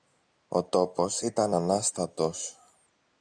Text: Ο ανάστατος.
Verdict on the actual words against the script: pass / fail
fail